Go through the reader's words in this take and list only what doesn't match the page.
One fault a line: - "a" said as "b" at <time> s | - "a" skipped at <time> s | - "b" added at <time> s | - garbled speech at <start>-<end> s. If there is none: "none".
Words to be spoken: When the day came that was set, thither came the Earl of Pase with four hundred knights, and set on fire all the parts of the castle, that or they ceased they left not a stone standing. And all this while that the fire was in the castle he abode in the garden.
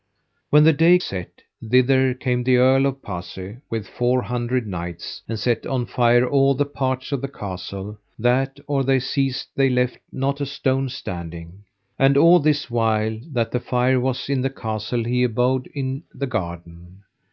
- "came that was" skipped at 1.0 s